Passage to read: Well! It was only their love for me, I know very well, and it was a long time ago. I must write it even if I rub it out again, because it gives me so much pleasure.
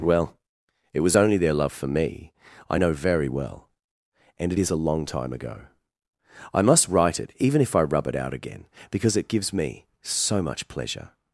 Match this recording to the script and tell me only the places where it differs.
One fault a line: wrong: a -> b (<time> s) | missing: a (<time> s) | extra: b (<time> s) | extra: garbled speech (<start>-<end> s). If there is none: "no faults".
wrong: was -> is (4.6 s)